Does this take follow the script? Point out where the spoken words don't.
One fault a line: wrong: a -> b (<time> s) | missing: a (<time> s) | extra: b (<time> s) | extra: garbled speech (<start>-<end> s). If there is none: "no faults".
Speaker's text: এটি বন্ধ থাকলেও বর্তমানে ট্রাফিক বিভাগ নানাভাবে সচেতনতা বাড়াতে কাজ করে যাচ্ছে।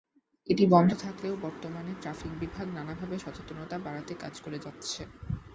no faults